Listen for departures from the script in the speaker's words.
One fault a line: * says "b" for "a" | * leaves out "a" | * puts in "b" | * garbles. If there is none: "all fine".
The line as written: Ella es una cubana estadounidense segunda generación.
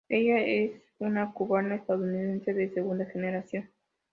* puts in "de"